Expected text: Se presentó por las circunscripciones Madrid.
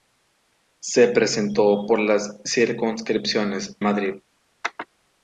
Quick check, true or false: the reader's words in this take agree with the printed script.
true